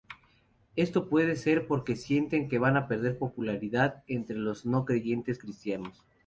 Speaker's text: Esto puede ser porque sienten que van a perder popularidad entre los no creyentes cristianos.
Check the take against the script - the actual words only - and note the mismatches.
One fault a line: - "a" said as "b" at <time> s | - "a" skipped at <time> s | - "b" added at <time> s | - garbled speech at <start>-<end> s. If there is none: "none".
none